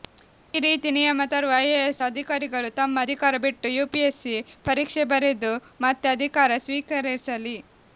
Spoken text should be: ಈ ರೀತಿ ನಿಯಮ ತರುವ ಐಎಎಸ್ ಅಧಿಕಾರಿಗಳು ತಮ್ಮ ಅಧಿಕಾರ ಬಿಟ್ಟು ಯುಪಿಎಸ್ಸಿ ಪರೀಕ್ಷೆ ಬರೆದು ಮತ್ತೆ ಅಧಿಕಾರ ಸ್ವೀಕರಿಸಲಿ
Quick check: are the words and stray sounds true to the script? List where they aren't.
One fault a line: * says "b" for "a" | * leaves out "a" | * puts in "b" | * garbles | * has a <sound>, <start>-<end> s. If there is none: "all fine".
all fine